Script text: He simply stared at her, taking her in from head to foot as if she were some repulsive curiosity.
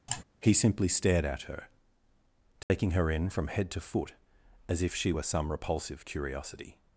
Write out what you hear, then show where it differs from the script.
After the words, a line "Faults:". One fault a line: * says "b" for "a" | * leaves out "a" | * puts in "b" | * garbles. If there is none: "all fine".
He simply stared at her, taking her in from head to foot as if she were some repulsive curiosity.
Faults:
all fine